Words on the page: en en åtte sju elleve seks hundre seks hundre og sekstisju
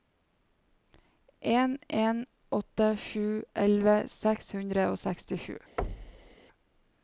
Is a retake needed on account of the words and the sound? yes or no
yes